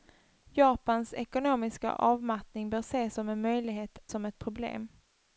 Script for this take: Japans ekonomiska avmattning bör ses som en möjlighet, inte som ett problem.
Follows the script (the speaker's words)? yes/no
no